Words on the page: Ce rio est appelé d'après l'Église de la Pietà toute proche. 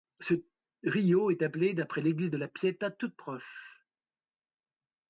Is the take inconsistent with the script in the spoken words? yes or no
no